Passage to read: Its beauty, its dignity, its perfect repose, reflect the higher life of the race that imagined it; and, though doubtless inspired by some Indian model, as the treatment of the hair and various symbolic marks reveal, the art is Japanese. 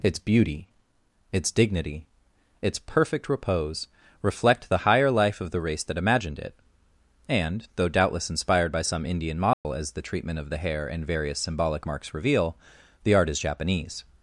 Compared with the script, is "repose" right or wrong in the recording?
right